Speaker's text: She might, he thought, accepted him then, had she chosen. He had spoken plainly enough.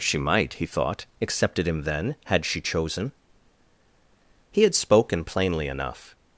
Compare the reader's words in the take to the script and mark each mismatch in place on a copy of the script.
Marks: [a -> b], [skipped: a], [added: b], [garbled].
She might, he thought, accepted him then, had she chosen. He had spoken plainly enough.